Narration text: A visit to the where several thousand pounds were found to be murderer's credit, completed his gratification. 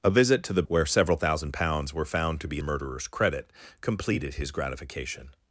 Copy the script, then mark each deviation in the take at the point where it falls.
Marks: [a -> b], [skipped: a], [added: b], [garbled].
A visit to the where several thousand pounds were found to be murderer's credit, completed his gratification.